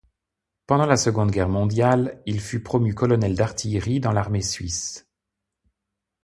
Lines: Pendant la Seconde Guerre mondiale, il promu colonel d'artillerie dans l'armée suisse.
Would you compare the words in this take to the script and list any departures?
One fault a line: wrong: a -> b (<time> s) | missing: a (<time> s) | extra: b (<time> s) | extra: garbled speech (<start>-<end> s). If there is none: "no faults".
extra: fut (2.4 s)